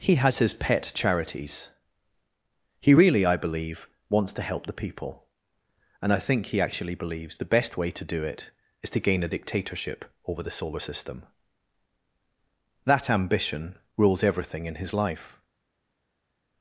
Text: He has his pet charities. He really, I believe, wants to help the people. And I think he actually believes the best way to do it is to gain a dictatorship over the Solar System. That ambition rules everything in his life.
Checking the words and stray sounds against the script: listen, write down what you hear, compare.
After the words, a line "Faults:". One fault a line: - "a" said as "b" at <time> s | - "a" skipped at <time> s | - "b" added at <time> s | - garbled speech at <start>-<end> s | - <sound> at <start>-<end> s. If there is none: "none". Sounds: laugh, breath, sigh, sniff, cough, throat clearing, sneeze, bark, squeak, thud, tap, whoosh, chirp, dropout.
He has his pet charities. He really, I believe, wants to help the people. And I think he actually believes the best way to do it is to gain a dictatorship over the Solar System. That ambition rules everything in his life.
Faults:
none